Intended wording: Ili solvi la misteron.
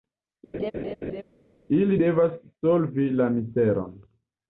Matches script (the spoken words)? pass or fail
fail